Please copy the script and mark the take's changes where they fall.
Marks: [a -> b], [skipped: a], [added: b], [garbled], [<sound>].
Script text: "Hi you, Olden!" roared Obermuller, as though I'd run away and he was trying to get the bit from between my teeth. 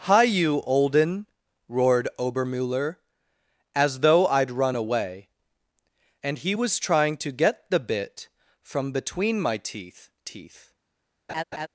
"Hi you, Olden!" roared Obermuller, as though I'd run away and he was trying to get the bit from between my teeth. [added: teeth] [laugh]